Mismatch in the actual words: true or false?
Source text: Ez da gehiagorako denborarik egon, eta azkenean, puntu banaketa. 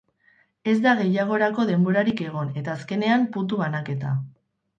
false